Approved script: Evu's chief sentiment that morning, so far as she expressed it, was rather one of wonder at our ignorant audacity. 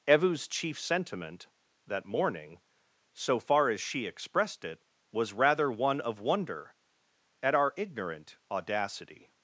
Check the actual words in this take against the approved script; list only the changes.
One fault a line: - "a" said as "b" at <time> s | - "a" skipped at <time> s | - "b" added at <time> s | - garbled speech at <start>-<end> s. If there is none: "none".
none